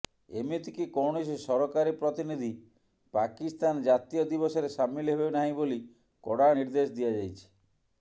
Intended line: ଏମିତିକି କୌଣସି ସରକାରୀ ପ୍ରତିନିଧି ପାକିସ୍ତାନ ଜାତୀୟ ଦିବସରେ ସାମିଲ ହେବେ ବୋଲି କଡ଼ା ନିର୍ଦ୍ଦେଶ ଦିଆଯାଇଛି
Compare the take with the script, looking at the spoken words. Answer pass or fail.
fail